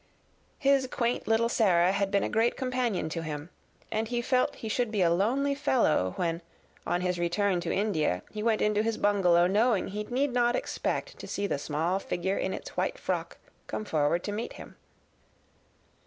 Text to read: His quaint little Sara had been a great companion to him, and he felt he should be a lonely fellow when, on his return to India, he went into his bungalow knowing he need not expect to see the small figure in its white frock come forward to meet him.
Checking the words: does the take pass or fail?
pass